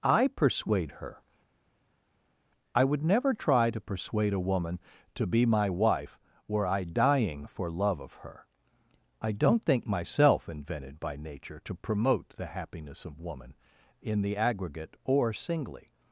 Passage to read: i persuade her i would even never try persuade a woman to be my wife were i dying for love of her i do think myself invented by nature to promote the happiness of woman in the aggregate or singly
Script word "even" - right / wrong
wrong